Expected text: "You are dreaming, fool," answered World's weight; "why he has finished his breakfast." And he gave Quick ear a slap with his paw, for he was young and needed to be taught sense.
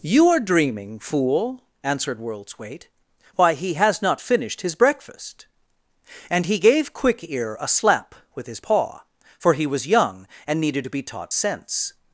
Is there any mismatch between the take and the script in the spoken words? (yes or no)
yes